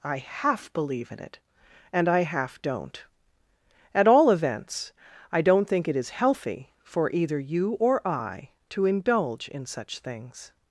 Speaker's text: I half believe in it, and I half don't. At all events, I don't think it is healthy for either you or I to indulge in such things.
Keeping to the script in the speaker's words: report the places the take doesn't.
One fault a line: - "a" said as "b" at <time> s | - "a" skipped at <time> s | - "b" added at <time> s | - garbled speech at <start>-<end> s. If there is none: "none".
none